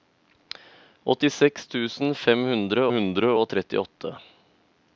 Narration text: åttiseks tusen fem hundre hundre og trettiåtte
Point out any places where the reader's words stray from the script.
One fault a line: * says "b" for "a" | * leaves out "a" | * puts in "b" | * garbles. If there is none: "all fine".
all fine